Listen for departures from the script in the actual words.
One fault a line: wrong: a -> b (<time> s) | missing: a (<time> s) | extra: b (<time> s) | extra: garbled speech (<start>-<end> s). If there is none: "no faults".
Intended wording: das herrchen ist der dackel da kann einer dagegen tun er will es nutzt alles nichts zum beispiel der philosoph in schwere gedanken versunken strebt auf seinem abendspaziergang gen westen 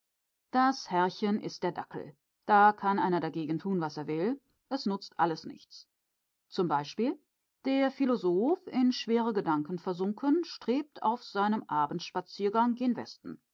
extra: was (3.8 s)